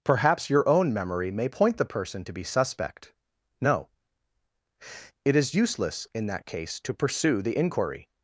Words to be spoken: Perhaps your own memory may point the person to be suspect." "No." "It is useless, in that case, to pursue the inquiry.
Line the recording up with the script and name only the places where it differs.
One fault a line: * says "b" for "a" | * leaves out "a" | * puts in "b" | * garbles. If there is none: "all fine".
all fine